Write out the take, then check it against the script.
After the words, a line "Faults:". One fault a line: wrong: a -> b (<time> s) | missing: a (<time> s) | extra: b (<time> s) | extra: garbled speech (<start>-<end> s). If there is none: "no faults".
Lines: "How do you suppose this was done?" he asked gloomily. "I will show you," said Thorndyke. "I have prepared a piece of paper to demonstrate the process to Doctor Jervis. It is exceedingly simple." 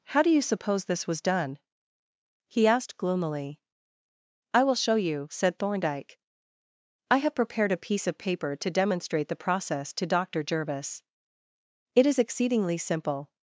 "How do you suppose this was done?" he asked gloomily. "I will show you," said Thorndyke. "I have prepared a piece of paper to demonstrate the process to Doctor Jervis. It is exceedingly simple."
Faults:
no faults